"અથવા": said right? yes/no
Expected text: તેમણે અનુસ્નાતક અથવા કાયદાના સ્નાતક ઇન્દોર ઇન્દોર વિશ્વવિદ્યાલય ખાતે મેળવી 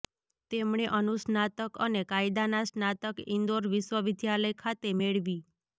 no